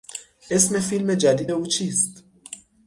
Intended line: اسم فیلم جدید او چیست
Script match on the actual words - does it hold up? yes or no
yes